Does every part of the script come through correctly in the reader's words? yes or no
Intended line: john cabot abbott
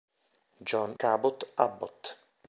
yes